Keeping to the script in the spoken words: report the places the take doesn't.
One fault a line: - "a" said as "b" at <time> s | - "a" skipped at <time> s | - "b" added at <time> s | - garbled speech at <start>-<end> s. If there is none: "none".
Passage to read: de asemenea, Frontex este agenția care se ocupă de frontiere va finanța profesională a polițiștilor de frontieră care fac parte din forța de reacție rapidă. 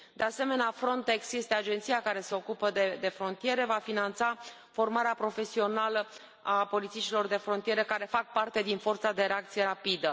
- "formarea" added at 4.7 s